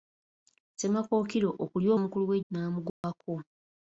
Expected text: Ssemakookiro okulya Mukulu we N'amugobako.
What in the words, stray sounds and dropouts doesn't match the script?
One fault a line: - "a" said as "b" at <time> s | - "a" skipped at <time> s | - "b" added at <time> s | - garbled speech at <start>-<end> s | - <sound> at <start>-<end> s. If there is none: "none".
- dropout at 2.9-3.0 s